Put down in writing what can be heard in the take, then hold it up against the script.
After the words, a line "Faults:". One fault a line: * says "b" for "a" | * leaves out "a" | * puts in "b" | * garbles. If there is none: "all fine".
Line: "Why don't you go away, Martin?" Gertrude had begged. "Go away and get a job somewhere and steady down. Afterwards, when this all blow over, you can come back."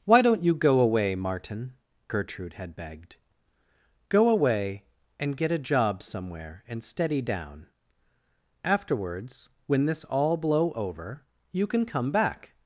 "Why don't you go away, Martin?" Gertrude had begged. "Go away and get a job somewhere and steady down. Afterwards, when this all blow over, you can come back."
Faults:
all fine